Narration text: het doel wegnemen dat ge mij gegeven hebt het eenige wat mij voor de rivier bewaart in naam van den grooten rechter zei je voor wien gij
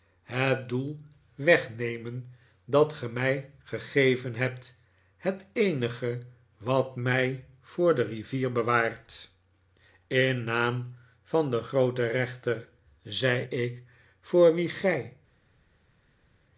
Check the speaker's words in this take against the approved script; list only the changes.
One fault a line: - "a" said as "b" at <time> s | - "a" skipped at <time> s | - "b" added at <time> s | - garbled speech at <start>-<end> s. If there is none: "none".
- "je" said as "ik" at 13.4 s